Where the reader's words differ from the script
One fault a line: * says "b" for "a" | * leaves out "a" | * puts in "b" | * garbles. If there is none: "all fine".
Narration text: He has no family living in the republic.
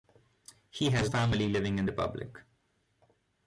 * leaves out "no"
* leaves out "the"